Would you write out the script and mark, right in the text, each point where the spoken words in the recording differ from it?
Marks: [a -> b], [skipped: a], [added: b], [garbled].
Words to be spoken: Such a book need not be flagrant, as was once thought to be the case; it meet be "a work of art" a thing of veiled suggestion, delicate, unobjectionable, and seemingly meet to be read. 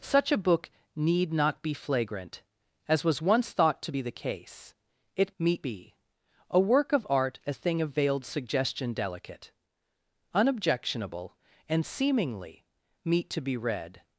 Such a book need not be flagrant, as was once thought to be the case; it meet be "a work of art" a thing of veiled suggestion, delicate, unobjectionable, and seemingly meet to be read.